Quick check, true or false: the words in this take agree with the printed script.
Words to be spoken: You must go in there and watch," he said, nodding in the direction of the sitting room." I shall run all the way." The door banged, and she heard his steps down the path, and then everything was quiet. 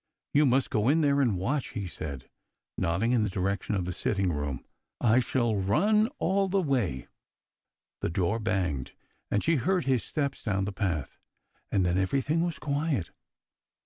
true